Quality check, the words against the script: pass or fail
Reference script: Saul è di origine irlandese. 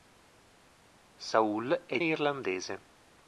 fail